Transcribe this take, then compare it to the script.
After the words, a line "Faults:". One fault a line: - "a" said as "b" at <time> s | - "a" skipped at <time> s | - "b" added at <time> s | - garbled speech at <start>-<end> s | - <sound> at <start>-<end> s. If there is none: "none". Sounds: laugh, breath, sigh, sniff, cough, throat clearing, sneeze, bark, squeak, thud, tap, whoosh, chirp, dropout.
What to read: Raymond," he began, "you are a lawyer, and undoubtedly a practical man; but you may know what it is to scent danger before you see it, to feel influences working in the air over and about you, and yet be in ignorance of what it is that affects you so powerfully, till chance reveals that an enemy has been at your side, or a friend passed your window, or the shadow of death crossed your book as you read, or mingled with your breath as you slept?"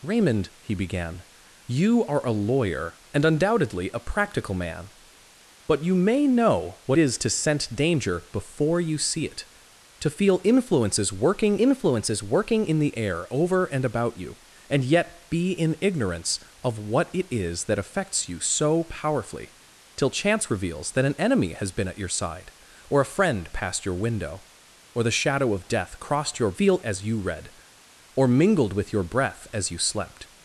Raymond," he began, "you are a lawyer, and undoubtedly a practical man; but you may know what is to scent danger before you see it, to feel influences working influences working in the air over and about you, and yet be in ignorance of what it is that affects you so powerfully, till chance reveals that an enemy has been at your side, or a friend passed your window, or the shadow of death crossed your feel as you read, or mingled with your breath as you slept?"
Faults:
- "it" skipped at 7.0 s
- "influences working" added at 11.6 s
- "book" said as "feel" at 26.5 s